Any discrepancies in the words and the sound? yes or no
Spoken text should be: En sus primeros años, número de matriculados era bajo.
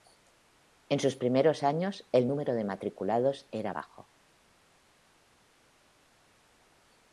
yes